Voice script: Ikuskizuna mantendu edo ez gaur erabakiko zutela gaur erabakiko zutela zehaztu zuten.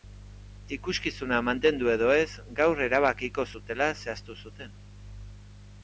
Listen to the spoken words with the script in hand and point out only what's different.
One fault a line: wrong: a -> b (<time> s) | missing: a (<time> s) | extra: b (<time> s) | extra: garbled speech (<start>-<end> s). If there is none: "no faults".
missing: gaur erabakiko zutela (3.9 s)